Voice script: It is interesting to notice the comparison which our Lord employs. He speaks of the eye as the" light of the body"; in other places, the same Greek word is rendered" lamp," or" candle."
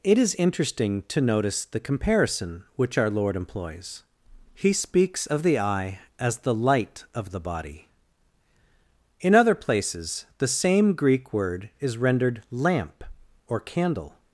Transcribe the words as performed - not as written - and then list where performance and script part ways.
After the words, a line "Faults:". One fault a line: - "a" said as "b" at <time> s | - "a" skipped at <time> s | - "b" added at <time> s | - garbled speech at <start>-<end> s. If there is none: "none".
It is interesting to notice the comparison which our Lord employs. He speaks of the eye as the" light of the body"; in other places, the same Greek word is rendered" lamp," or" candle."
Faults:
none